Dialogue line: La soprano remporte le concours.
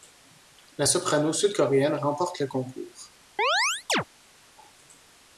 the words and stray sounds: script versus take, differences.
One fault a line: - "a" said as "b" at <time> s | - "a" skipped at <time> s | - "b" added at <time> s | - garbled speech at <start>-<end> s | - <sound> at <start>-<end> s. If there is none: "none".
- "sud coréenne" added at 1.3 s
- chirp at 3.4-4.0 s